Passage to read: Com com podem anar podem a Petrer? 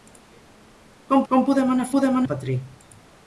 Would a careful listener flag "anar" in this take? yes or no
no